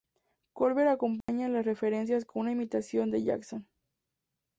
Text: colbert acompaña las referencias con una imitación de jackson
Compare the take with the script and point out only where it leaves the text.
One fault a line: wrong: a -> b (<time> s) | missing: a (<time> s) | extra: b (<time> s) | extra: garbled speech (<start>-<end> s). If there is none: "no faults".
no faults